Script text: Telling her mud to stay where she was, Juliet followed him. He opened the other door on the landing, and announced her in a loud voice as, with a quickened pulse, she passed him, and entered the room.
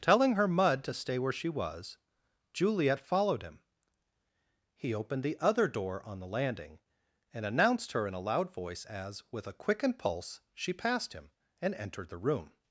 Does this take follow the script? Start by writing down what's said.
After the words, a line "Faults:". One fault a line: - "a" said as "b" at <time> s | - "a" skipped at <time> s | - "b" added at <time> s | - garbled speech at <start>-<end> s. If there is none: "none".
Telling her mud to stay where she was, Juliet followed him. He opened the other door on the landing, and announced her in a loud voice as, with a quickened pulse, she passed him, and entered the room.
Faults:
none